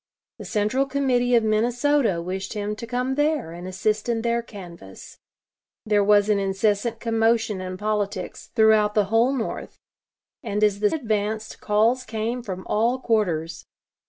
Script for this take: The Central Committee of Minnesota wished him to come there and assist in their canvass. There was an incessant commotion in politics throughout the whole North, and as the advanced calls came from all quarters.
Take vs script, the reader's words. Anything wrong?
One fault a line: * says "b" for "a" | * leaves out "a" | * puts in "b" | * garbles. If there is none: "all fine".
all fine